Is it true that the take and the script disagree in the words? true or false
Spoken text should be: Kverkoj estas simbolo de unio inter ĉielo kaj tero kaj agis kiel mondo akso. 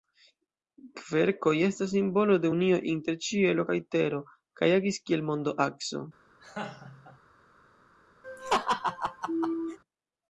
false